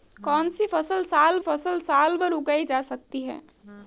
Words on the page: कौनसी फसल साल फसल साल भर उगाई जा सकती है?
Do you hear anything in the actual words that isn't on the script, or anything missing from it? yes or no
no